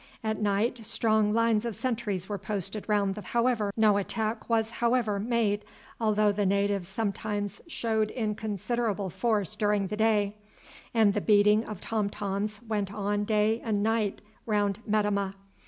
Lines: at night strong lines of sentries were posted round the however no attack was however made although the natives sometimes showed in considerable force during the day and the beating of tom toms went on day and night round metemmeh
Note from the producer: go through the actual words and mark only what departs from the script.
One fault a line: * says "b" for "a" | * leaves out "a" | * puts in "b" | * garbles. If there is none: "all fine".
all fine